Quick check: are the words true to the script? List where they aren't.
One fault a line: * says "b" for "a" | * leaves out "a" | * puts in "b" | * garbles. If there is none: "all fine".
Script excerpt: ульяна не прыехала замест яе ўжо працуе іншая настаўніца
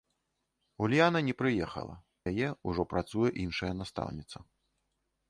* leaves out "замест"